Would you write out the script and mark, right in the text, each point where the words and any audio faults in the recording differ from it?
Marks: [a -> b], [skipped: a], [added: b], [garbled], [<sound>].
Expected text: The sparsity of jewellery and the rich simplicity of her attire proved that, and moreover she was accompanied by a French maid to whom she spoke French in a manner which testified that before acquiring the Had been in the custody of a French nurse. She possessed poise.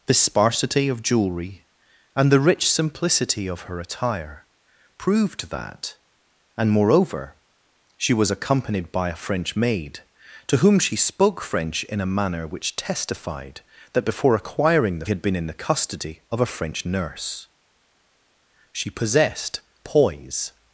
The sparsity of jewellery and the rich simplicity of her attire proved that, and moreover she was accompanied by a French maid to whom she spoke French in a manner which testified that before acquiring the Had been in the custody of a French nurse. She possessed poise.